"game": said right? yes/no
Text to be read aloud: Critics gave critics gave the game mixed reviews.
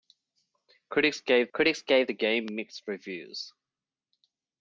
yes